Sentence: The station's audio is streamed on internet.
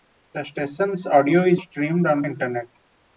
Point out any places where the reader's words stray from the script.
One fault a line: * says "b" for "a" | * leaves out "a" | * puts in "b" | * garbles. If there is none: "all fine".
all fine